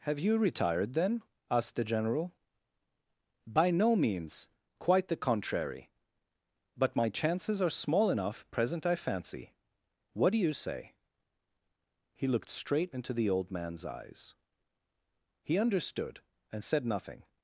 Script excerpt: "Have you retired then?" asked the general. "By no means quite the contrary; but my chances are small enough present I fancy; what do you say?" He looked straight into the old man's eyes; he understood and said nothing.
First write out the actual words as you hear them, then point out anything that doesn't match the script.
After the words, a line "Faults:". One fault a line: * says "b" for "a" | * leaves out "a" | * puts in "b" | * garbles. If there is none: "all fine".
"Have you retired then?" asked the general. "By no means quite the contrary; but my chances are small enough present I fancy; what do you say?" He looked straight into the old man's eyes; he understood and said nothing.
Faults:
all fine